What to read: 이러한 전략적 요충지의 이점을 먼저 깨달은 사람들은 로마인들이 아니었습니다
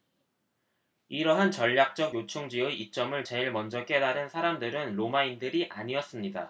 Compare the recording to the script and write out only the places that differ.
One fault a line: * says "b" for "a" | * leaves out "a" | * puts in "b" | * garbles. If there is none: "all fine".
* puts in "제일"